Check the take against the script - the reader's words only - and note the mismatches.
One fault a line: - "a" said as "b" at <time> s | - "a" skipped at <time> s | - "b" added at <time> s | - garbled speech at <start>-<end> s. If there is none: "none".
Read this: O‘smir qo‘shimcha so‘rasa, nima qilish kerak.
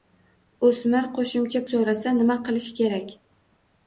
none